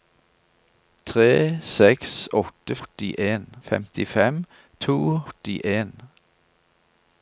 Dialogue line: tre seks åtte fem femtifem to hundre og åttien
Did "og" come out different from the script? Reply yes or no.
yes